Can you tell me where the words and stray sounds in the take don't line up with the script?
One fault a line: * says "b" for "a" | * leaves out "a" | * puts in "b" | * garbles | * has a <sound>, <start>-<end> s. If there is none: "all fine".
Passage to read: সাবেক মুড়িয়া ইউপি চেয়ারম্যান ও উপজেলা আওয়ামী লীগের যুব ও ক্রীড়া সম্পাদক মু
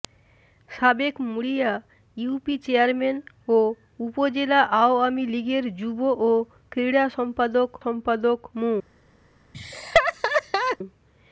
* puts in "সম্পাদক"
* has a laugh, 9.5-10.8 s